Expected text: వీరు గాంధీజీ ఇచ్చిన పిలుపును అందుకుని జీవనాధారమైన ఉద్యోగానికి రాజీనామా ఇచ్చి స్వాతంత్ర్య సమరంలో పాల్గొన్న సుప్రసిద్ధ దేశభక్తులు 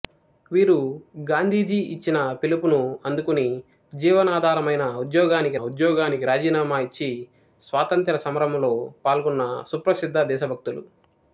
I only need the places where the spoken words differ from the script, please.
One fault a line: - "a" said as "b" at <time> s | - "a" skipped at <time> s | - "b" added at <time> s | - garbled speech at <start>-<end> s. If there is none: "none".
- "ఉద్యోగానికి" added at 5.6 s